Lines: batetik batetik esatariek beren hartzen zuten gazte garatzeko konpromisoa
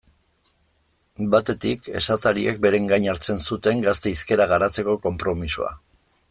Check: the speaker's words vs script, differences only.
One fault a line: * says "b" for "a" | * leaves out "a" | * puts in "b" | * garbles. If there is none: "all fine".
* leaves out "batetik"
* puts in "gain"
* puts in "hizkera"